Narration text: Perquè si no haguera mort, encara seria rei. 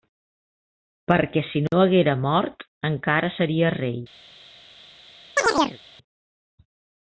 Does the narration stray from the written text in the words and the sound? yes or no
yes